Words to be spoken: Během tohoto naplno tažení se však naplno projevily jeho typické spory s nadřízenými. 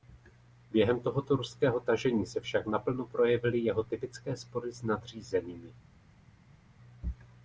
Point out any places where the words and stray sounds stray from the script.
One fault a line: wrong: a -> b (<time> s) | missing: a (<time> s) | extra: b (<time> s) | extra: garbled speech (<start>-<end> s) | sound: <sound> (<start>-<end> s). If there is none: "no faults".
wrong: naplno -> ruského (1.3 s)